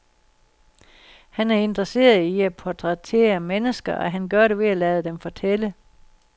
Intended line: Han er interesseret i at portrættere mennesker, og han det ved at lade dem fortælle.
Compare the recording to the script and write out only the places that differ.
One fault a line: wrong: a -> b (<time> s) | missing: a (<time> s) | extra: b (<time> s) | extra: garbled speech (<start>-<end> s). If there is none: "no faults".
extra: gør (4.3 s)